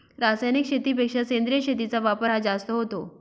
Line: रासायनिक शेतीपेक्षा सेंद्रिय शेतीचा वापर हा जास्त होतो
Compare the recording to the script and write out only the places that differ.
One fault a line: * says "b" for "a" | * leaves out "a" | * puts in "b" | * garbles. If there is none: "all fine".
all fine